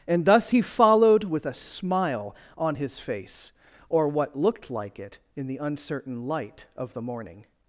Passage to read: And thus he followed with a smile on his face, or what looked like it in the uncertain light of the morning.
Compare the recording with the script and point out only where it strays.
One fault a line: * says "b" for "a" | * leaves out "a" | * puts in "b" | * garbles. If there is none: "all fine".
all fine